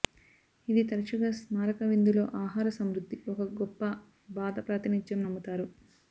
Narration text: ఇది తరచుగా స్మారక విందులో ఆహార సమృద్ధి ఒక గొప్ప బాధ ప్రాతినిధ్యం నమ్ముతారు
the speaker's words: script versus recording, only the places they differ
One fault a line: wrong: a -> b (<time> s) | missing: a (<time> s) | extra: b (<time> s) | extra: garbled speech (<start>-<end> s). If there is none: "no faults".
no faults